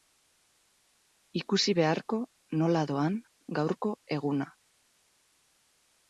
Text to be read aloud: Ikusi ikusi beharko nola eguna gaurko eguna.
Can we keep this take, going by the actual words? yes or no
no